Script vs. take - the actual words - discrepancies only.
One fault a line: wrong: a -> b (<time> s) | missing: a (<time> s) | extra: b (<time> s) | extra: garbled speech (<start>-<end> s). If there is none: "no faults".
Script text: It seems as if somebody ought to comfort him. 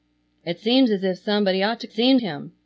wrong: comfort -> seems (1.9 s)